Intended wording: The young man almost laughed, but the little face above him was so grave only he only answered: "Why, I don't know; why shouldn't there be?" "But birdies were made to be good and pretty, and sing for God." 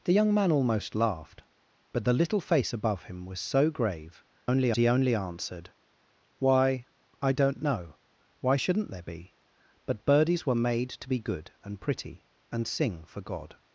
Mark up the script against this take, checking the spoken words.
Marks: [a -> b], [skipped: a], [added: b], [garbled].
The young man almost laughed, but the little face above him was so grave only he only answered: "Why, I don't know; why shouldn't there be?" "But birdies were made to be good and pretty, and sing for God."